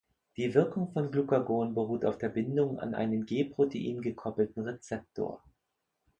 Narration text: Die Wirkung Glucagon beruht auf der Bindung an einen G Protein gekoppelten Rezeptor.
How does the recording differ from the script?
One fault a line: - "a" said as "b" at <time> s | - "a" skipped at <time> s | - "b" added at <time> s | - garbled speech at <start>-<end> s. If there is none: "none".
- "von" added at 0.9 s